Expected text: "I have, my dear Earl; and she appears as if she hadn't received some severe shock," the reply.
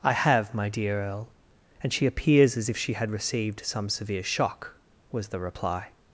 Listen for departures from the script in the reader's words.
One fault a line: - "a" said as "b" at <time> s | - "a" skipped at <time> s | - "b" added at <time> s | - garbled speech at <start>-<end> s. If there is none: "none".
- "hadn't" said as "had" at 2.9 s
- "was" added at 5.1 s